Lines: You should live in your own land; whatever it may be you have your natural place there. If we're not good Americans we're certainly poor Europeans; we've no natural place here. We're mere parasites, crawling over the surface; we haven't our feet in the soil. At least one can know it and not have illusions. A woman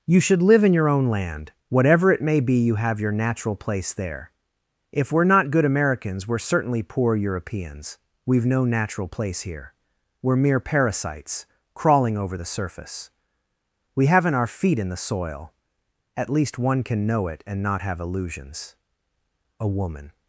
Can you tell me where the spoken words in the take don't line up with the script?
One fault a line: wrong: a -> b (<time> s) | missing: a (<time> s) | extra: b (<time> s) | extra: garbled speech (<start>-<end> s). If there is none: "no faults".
no faults